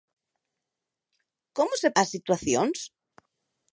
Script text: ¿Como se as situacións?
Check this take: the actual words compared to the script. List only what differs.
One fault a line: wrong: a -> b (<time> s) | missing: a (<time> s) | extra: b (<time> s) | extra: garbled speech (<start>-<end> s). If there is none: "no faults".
no faults